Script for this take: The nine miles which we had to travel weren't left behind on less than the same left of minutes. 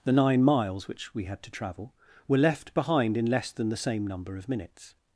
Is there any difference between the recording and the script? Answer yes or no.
yes